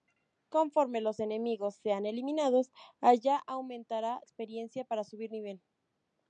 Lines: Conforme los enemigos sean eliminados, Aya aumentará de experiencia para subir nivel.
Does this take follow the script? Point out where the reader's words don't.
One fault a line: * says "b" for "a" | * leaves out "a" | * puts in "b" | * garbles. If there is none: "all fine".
* leaves out "de"